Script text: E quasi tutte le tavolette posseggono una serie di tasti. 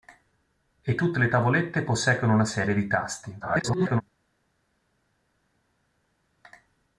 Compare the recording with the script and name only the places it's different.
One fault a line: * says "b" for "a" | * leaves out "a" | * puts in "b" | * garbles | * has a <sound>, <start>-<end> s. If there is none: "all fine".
* leaves out "quasi"
* garbles